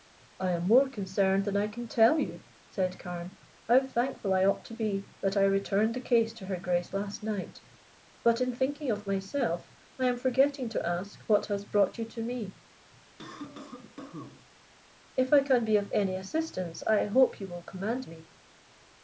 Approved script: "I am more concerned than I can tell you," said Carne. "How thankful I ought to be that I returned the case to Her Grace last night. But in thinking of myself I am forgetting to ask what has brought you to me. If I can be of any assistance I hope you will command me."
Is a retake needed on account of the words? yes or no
no